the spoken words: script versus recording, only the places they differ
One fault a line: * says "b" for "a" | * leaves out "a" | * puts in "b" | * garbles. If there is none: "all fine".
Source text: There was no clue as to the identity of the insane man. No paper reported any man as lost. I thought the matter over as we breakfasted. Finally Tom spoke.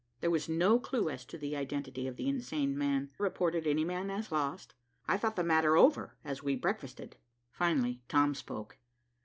* leaves out "No paper"